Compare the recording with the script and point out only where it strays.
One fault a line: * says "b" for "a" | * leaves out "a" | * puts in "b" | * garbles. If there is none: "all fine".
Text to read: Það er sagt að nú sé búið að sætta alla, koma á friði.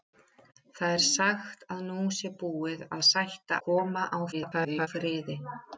* leaves out "alla"
* garbles